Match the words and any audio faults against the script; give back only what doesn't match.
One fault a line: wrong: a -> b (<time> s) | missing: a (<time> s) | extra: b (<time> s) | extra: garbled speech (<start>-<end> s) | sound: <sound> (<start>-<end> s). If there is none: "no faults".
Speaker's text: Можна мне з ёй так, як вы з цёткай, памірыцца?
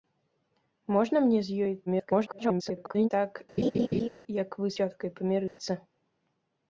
extra: garbled speech (1.9-3.1 s)
sound: laugh (3.6-4.1 s)
missing: з (4.7 s)
sound: dropout (5.5-5.6 s)